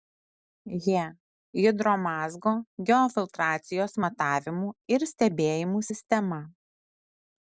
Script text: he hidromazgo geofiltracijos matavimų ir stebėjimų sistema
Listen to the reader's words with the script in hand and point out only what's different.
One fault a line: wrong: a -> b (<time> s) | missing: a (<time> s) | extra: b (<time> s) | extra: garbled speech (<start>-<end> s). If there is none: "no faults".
no faults